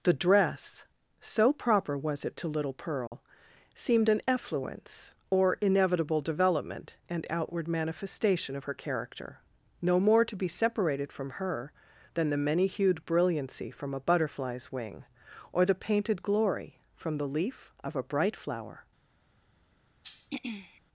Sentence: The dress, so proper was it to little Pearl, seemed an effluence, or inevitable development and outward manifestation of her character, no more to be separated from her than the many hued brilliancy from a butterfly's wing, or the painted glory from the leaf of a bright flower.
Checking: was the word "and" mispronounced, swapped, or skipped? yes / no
no